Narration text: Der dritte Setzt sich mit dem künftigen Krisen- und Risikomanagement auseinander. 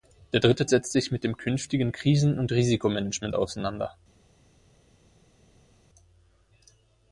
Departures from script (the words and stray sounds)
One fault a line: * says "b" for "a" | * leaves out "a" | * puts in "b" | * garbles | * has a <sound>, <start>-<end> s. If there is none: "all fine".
all fine